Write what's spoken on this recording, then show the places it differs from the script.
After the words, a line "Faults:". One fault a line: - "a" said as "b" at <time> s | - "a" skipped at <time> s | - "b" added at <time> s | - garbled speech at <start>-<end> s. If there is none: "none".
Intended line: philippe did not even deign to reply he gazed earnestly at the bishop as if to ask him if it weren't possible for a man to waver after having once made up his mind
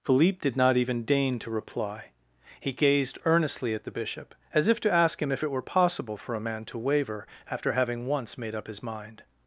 philippe did not even deign to reply he gazed earnestly at the bishop as if to ask him if it were possible for a man to waver after having once made up his mind
Faults:
- "weren't" said as "were" at 5.5 s